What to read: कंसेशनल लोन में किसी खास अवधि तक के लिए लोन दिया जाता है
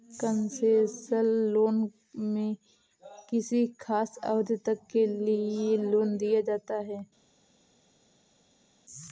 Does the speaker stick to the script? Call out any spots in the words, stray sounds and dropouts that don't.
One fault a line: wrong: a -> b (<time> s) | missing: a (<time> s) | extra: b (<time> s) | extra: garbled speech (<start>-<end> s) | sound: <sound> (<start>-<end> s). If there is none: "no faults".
no faults